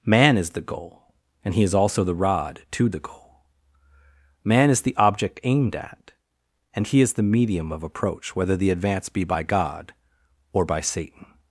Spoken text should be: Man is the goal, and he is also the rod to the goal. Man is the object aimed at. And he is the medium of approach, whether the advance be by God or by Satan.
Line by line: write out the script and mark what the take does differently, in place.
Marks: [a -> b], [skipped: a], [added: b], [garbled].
Man is the goal, and he is also the rod to the goal. Man is the object aimed at. And he is the medium of approach, whether the advance be by God or by Satan.